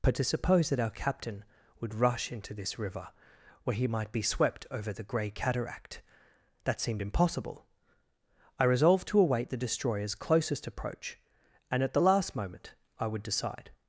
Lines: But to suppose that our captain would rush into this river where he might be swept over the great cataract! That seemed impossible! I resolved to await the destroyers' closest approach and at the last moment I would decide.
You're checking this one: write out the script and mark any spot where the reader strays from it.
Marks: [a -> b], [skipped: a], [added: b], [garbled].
But to suppose that our captain would rush into this river where he might be swept over the [great -> grey] cataract! That seemed impossible! I resolved to await the destroyers' closest approach and at the last moment I would decide.